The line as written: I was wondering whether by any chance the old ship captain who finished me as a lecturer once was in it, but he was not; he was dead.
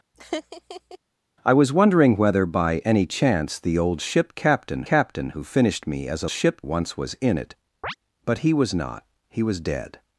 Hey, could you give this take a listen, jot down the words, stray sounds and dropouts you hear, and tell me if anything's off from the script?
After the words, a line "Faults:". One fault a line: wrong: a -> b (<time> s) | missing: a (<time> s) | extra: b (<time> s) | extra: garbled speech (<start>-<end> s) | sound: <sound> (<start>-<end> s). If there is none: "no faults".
I was wondering whether by any chance the old ship captain captain who finished me as a ship once was in it, but he was not; he was dead.
Faults:
sound: laugh (0.1-1.0 s)
extra: captain (4.8 s)
wrong: lecturer -> ship (6.3 s)
sound: chirp (7.8-8.0 s)